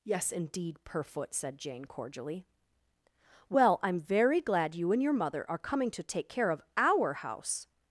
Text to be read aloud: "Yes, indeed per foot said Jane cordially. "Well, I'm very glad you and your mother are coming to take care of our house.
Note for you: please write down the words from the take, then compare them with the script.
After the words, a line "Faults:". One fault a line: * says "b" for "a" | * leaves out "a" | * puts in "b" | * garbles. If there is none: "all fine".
"Yes, indeed per foot said Jane cordially. "Well, I'm very glad you and your mother are coming to take care of our house.
Faults:
all fine